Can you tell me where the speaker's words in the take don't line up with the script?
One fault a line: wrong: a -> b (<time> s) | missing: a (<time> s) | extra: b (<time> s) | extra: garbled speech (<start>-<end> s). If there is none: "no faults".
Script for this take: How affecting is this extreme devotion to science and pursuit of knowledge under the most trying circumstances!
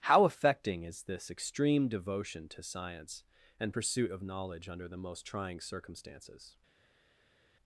no faults